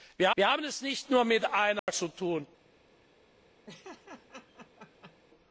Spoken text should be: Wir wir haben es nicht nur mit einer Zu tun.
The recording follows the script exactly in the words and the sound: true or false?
false